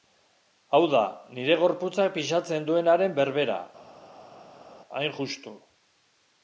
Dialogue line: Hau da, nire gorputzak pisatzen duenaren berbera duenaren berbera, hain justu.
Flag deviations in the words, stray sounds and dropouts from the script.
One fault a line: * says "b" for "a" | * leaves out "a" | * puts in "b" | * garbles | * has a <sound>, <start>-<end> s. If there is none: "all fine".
* leaves out "duenaren berbera"